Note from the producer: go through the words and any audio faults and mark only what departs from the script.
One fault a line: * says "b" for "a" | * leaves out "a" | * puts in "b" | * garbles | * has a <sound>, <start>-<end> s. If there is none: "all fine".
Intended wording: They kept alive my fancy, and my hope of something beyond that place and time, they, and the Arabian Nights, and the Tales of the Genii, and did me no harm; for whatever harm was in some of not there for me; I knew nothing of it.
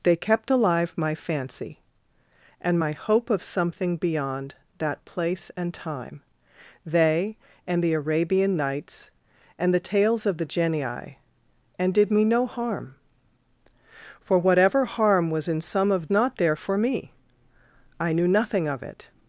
all fine